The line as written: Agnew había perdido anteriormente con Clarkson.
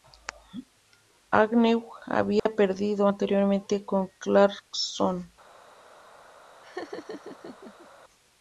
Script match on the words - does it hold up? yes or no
yes